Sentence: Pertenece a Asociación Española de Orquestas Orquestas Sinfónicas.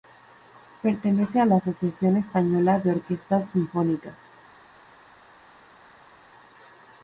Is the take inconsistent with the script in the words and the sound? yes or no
yes